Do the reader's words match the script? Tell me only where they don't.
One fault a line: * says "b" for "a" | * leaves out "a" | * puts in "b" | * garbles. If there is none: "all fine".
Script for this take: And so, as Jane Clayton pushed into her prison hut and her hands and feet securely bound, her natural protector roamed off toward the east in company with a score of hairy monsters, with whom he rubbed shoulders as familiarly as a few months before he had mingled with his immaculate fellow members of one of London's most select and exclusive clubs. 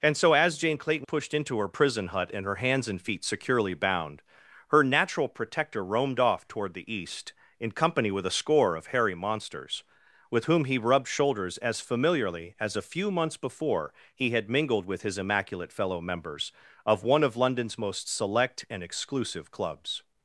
all fine